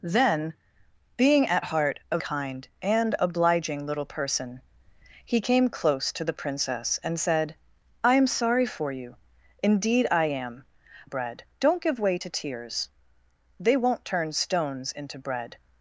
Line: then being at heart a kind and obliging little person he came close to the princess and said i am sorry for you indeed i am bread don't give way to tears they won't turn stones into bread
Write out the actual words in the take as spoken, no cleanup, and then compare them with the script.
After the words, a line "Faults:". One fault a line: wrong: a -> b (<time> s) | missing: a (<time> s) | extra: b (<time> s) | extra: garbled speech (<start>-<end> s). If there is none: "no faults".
then being at heart a kind and obliging little person he came close to the princess and said i am sorry for you indeed i am bread don't give way to tears they won't turn stones into bread
Faults:
no faults